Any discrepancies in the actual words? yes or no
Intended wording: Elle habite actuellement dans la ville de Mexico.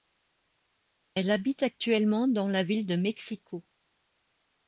no